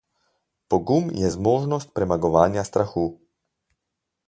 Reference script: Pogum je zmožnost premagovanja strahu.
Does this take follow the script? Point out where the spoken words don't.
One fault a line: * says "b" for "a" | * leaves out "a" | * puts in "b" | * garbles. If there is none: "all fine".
all fine